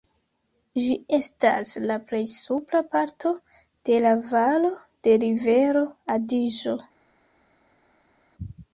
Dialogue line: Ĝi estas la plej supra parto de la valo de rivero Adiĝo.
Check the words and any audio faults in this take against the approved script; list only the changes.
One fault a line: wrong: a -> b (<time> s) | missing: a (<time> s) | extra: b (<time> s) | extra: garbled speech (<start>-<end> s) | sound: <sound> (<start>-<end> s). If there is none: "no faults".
no faults